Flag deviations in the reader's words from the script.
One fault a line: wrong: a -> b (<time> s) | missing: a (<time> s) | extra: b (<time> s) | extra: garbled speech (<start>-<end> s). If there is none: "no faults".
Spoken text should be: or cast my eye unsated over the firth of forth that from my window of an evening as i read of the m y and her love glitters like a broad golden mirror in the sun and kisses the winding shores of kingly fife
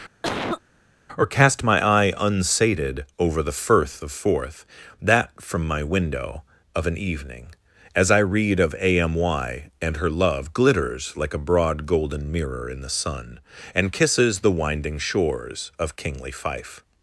wrong: the -> a (8.8 s)